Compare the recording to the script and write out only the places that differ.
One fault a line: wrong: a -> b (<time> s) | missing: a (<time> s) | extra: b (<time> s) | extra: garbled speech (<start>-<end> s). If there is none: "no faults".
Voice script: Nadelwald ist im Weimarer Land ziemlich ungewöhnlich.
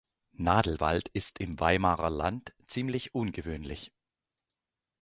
no faults